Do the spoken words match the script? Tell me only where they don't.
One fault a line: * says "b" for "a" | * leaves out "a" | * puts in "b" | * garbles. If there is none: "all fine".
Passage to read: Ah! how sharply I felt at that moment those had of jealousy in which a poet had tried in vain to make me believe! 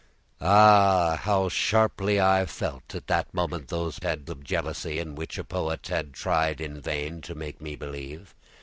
all fine